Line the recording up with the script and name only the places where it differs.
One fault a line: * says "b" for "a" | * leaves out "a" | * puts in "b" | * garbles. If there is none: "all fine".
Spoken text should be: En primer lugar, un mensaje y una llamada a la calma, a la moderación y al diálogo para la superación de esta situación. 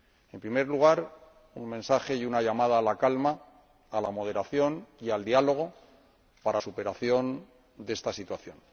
* leaves out "la"